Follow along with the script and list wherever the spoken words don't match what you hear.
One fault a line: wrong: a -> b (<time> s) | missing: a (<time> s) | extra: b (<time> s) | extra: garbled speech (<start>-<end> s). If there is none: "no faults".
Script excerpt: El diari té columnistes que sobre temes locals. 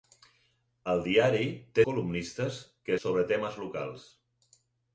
no faults